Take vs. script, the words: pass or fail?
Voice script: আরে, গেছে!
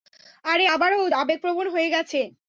fail